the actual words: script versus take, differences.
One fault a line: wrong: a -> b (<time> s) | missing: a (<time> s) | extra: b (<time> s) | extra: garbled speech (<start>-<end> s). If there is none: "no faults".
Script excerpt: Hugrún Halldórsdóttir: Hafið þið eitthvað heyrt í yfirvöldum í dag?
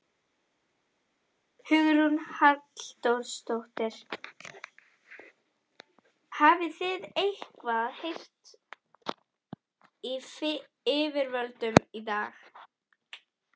no faults